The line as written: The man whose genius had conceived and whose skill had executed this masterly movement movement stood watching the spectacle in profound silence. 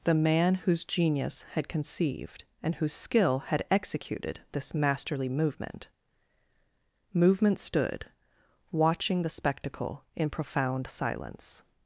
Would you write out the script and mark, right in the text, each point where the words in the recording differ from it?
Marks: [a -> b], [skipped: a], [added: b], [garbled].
The man whose genius had conceived and whose skill had executed this masterly movement movement stood watching the spectacle in profound silence.